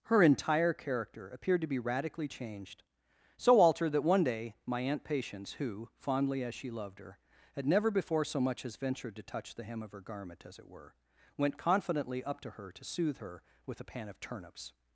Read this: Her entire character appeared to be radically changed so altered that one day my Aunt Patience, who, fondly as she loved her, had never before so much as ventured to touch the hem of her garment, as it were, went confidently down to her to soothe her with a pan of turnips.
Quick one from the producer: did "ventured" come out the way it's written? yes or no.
yes